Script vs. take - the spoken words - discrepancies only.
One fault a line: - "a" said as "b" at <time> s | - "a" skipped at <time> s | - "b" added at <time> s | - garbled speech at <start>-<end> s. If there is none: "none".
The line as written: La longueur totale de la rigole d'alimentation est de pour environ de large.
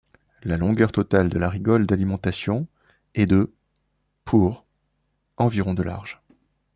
none